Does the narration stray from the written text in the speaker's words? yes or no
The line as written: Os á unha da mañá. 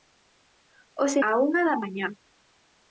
no